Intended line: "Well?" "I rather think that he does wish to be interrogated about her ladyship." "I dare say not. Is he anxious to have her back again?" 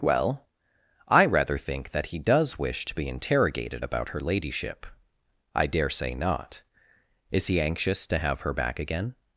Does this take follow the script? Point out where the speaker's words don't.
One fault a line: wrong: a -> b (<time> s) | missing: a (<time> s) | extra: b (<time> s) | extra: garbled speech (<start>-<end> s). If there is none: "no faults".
no faults